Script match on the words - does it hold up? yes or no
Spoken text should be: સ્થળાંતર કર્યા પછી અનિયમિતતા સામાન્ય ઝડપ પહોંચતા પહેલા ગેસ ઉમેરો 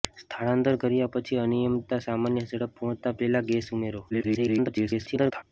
no